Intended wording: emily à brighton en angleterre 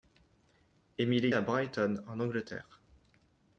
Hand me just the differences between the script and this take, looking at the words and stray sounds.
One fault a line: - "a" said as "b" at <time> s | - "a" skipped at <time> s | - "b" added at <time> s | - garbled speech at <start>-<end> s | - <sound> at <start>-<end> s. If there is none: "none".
none